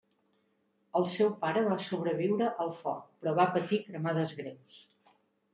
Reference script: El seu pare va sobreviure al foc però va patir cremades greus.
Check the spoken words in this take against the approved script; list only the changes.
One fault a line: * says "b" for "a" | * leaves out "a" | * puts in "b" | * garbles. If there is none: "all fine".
all fine